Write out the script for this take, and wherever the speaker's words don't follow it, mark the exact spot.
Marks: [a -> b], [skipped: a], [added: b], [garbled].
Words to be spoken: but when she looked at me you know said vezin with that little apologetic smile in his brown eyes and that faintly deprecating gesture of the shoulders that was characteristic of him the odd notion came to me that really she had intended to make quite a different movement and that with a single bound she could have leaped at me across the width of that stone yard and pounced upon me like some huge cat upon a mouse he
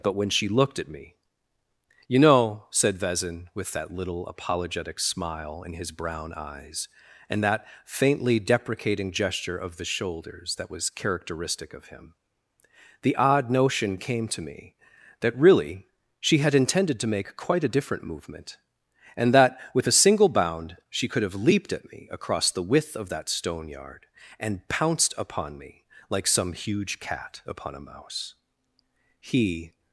but when she looked at me you know said vezin with that little apologetic smile in his brown eyes and that faintly deprecating gesture of the shoulders that was characteristic of him the odd notion came to me that really she had intended to make quite a different movement and that with a single bound she could have leaped at me across the width of that stone yard and pounced upon me like some huge cat upon a mouse he